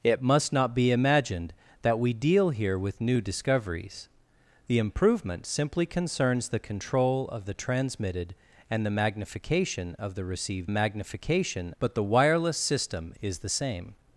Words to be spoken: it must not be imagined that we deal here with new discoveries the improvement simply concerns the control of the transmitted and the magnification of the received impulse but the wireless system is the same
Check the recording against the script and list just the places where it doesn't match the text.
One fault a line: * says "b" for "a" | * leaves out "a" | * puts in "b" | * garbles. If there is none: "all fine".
* says "magnification" for "impulse"